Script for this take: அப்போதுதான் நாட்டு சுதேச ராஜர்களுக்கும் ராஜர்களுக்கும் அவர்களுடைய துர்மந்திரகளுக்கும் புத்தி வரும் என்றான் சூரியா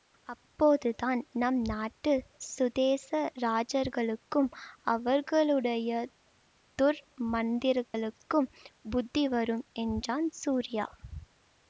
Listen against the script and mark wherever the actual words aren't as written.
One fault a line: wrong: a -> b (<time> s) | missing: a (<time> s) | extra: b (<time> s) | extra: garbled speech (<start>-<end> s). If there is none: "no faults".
extra: நம் (1.3 s)
missing: ராஜர்களுக்கும் (4.5 s)